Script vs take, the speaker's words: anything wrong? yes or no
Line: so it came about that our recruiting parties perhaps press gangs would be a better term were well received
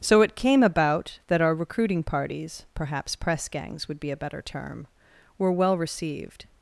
no